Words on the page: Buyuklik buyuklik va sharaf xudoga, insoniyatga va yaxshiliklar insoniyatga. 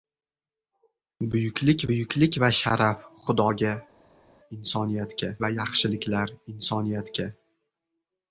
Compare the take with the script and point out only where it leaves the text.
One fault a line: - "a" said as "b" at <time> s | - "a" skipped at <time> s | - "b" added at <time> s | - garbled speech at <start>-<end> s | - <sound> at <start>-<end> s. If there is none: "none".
none